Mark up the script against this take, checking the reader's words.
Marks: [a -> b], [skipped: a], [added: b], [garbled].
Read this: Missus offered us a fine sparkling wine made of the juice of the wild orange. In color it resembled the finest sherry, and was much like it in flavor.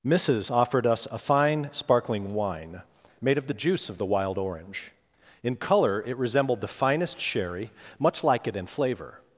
Missus offered us a fine sparkling wine made of the juice of the wild orange. In color it resembled the finest sherry, [skipped: and was] much like it in flavor.